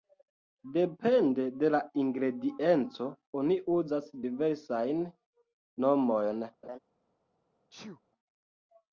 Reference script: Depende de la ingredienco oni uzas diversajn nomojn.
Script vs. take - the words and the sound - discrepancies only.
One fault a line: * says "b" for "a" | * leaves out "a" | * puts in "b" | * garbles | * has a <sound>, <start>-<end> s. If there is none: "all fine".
* has a laugh, 6.6-6.8 s
* has a sneeze, 7.7-8.0 s